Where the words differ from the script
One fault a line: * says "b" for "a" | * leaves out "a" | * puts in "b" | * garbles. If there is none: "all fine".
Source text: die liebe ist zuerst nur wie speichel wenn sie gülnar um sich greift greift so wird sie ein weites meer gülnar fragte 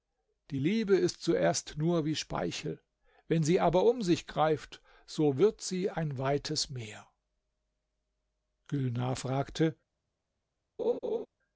* says "aber" for "gülnar"
* leaves out "greift"